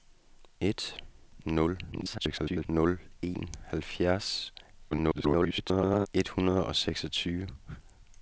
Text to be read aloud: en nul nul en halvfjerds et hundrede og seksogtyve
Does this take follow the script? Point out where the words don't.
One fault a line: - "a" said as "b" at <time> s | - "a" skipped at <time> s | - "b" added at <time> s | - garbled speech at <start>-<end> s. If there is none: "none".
- garbled speech at 1.9-2.7 s
- garbled speech at 4.9-6.1 s